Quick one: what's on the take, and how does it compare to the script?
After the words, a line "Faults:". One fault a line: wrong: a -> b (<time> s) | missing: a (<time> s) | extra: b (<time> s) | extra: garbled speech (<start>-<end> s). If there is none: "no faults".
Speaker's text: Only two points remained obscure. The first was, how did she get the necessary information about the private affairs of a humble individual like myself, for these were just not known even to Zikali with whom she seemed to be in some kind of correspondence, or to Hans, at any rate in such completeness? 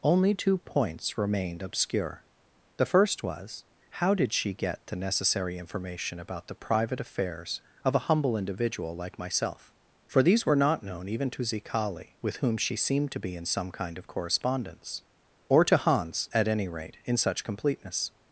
Only two points remained obscure. The first was, how did she get the necessary information about the private affairs of a humble individual like myself, for these were not known even to Zikali with whom she seemed to be in some kind of correspondence, or to Hans, at any rate in such completeness?
Faults:
missing: just (10.6 s)